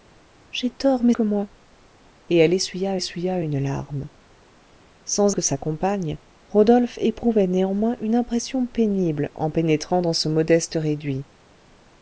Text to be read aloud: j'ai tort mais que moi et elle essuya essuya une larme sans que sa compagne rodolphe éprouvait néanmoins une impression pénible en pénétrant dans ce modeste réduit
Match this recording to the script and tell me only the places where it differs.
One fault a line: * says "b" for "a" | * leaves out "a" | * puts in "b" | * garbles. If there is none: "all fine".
all fine